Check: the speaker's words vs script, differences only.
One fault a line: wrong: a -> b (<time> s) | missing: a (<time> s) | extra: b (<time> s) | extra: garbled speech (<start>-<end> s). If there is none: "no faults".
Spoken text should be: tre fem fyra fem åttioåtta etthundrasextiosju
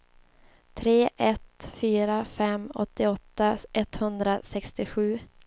wrong: fem -> ett (1.2 s)